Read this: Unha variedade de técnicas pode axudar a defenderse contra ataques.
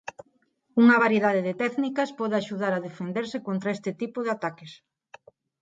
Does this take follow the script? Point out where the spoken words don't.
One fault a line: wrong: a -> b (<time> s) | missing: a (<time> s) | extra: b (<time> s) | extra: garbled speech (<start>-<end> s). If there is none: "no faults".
extra: este tipo de (3.8 s)